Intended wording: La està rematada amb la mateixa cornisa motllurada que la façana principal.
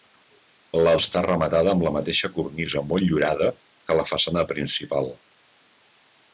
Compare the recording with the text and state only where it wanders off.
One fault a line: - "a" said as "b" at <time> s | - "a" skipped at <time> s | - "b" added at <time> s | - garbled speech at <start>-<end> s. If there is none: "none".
none